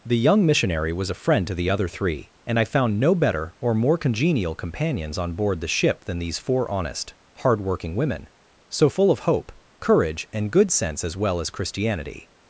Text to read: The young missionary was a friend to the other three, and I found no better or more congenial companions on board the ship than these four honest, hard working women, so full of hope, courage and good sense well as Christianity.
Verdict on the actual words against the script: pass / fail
fail